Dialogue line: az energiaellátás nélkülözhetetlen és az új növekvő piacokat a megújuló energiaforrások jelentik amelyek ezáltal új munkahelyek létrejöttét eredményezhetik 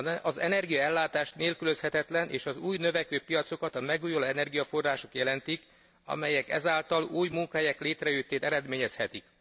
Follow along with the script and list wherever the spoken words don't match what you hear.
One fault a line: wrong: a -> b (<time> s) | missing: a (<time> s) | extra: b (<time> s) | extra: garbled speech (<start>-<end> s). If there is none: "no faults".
no faults